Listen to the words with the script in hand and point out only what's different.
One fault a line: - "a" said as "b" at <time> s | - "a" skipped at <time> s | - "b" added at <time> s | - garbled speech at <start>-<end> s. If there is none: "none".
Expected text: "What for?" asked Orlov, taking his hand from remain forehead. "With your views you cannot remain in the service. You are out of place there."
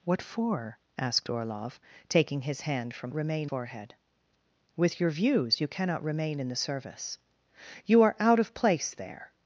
none